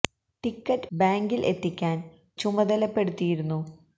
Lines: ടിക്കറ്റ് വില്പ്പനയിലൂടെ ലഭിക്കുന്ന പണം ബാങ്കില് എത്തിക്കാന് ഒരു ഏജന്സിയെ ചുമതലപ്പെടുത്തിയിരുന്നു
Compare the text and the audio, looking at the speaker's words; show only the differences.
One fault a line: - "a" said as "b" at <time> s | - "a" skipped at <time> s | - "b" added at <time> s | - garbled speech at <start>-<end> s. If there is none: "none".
- "വില്പ്പനയിലൂടെ ലഭിക്കുന്ന പണം" skipped at 0.9 s
- "ഒരു ഏജന്സിയെ" skipped at 2.1 s